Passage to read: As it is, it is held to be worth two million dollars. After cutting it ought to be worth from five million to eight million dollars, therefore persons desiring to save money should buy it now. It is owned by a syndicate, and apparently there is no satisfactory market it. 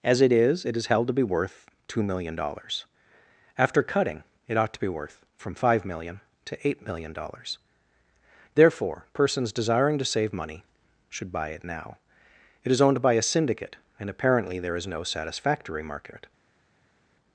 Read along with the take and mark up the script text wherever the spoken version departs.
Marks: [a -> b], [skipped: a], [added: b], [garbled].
As it is, it is held to be worth two million dollars. After cutting it ought to be worth from five million to eight million dollars, therefore persons desiring to save money should buy it now. It is owned by a syndicate, and apparently there is no satisfactory market it.